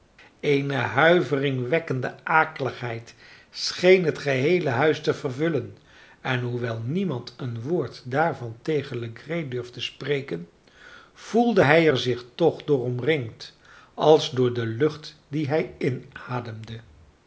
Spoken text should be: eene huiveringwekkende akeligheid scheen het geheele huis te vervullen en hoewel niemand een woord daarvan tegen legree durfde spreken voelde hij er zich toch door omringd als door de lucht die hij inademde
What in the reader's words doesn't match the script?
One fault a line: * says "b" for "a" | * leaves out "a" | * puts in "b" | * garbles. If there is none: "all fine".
all fine